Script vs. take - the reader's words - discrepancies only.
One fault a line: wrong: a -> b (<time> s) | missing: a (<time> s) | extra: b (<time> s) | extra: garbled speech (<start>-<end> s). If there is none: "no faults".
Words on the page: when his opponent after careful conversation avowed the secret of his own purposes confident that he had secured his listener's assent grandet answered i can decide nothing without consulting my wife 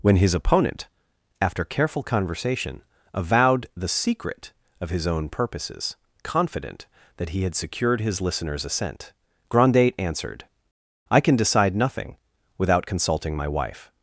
no faults